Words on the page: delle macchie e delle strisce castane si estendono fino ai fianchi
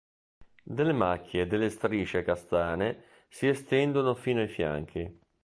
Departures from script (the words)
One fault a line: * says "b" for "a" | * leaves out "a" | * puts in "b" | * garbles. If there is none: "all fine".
all fine